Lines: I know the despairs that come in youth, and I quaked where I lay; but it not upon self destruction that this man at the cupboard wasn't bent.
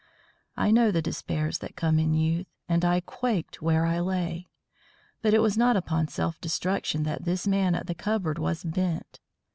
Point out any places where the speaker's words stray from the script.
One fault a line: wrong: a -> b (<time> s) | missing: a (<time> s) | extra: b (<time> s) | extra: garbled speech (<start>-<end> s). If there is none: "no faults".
extra: was (5.4 s)
wrong: wasn't -> was (8.4 s)